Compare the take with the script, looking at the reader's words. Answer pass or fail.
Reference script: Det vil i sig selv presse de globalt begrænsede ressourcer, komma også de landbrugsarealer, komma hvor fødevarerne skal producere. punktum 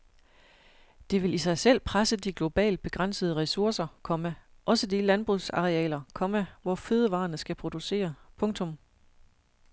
pass